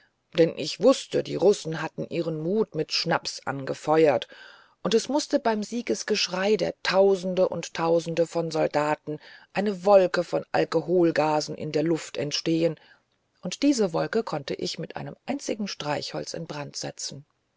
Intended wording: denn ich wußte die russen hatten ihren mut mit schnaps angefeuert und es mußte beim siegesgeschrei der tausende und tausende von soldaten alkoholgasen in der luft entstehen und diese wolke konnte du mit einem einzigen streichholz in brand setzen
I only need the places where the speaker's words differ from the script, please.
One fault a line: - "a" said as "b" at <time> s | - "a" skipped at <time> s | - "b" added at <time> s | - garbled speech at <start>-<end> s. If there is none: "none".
- "eine wolke von" added at 9.5 s
- "du" said as "ich" at 14.5 s